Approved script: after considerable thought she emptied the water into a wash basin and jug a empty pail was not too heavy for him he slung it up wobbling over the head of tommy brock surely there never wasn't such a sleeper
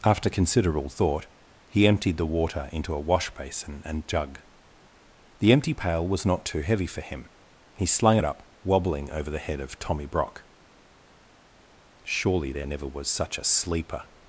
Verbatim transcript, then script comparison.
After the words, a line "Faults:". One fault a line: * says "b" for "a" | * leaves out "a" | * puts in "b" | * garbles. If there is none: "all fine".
after considerable thought he emptied the water into a wash basin and jug the empty pail was not too heavy for him he slung it up wobbling over the head of tommy brock surely there never was such a sleeper
Faults:
* says "he" for "she"
* says "the" for "a"
* says "was" for "wasn't"